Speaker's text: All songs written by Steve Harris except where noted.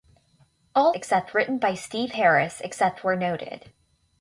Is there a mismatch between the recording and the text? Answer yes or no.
yes